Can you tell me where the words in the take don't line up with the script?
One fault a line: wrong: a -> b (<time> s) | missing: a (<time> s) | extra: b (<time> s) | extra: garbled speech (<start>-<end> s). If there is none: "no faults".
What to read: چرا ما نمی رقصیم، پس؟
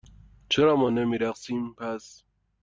no faults